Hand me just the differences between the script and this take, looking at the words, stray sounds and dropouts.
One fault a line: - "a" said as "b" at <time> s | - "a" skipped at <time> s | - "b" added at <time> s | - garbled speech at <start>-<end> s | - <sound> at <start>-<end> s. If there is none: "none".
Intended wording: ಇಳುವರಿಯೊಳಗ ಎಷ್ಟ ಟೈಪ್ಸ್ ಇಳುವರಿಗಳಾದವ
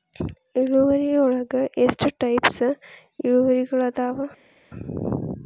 none